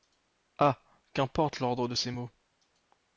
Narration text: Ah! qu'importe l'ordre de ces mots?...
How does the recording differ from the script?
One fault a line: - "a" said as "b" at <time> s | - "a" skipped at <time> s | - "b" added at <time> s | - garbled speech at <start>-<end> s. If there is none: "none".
none